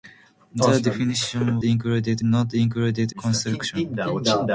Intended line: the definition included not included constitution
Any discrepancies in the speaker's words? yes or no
no